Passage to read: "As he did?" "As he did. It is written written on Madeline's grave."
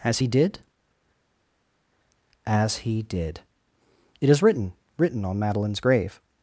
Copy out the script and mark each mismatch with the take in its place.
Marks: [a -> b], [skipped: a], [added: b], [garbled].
"As he did?" "As he did. It is written written on Madeline's grave."